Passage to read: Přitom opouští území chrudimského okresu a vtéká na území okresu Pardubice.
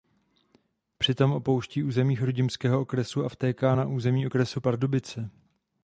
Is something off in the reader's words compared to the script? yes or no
no